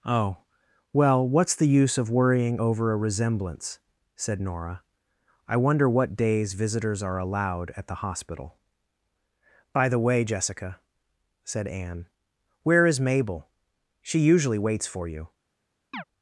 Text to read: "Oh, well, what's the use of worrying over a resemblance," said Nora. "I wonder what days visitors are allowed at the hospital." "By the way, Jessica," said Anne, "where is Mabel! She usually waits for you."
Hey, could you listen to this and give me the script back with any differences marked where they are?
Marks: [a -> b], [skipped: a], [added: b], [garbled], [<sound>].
"Oh, well, what's the use of worrying over a resemblance," said Nora. "I wonder what days visitors are allowed at the hospital." "By the way, Jessica," said Anne, "where is Mabel! She usually waits for you." [chirp]